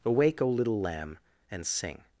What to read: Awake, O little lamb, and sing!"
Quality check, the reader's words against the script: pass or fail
pass